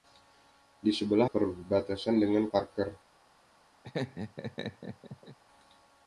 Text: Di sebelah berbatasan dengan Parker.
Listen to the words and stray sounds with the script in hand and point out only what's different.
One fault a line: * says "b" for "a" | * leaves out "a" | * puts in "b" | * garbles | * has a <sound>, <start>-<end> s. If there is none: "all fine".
* has a laugh, 3.8-5.4 s